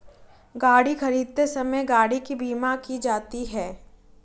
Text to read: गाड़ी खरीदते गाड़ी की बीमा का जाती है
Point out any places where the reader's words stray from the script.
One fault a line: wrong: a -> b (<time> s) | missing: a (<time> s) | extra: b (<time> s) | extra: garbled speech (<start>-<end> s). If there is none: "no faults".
extra: समय (1.5 s)
wrong: का -> की (2.8 s)